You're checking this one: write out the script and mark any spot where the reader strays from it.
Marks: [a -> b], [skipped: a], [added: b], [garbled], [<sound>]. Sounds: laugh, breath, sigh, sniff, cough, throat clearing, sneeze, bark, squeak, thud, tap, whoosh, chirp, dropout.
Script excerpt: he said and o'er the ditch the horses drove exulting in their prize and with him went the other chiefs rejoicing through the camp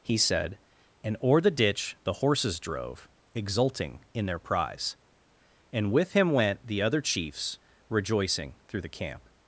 he said and o'er the ditch the horses drove exulting in their prize and with him went the other chiefs rejoicing through the camp